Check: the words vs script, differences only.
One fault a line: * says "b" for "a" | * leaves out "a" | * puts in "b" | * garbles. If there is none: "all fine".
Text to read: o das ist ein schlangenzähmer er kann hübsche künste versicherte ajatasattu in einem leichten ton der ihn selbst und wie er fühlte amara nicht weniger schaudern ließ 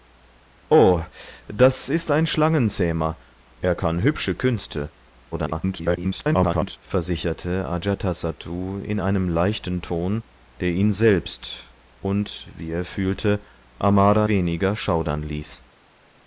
* garbles
* leaves out "nicht"